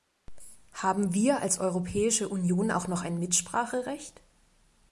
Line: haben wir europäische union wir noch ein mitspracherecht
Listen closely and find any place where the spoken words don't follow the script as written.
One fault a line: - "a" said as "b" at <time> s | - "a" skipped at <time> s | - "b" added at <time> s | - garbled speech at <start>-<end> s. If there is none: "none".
- "als" added at 1.4 s
- "wir" said as "auch" at 2.7 s